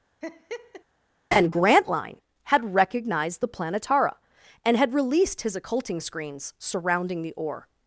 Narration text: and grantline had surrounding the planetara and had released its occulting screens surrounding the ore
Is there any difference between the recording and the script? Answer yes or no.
yes